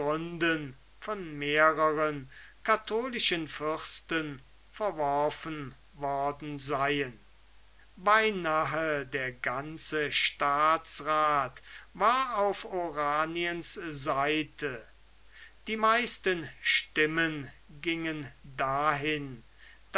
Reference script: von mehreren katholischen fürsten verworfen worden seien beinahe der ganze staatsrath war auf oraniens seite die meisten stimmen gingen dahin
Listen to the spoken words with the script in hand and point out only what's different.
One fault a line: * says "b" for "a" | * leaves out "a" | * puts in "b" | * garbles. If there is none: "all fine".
all fine